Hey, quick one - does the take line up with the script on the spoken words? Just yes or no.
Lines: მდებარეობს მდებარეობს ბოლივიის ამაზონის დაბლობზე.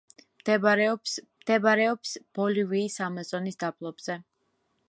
yes